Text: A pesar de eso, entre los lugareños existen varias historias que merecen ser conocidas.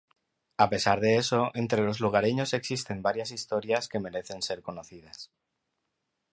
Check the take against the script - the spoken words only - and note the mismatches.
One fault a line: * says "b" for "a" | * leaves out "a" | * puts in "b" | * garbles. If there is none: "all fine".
all fine